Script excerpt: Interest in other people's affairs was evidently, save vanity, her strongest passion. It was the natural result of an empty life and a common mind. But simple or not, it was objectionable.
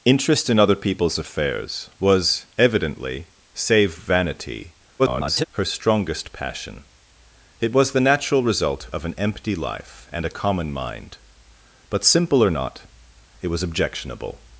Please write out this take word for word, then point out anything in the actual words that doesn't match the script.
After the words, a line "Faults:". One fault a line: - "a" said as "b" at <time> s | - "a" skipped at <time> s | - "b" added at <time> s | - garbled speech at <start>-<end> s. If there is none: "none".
Interest in other people's affairs was evidently, save vanity, [garbled] her strongest passion. It was the natural result of an empty life and a common mind. But simple or not, it was objectionable.
Faults:
- garbled speech at 5.0-5.4 s